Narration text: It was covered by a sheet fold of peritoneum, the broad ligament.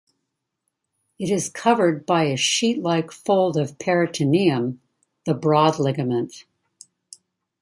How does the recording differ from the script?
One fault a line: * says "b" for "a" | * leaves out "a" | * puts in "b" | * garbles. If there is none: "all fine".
* says "is" for "was"
* puts in "like"